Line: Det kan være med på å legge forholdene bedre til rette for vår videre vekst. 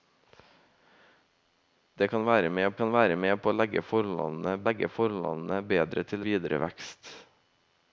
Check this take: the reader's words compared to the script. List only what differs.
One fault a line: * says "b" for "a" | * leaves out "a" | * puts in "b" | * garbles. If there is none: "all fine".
* puts in "kan være med"
* puts in "legge forholdene"
* leaves out "rette for vår"